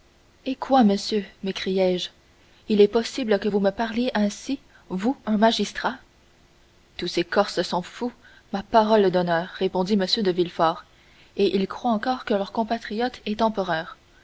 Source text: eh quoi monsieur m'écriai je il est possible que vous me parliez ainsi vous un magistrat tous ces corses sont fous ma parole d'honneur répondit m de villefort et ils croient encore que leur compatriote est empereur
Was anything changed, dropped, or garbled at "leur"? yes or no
no